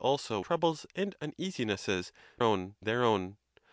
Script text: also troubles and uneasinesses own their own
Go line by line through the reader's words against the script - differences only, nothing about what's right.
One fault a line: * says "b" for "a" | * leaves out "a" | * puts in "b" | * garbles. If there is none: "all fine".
all fine